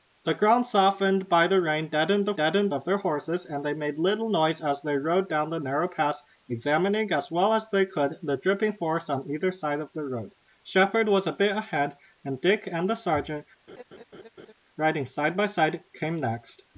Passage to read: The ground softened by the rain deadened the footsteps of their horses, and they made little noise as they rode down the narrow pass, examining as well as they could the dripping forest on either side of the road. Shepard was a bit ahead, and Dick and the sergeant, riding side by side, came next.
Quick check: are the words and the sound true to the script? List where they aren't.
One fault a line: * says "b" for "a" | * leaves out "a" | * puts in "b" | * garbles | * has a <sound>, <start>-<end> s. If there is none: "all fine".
* says "deadened" for "footsteps"
* has a laugh, 13.7-14.5 s